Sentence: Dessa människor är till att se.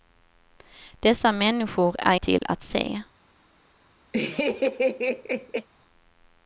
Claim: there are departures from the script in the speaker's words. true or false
false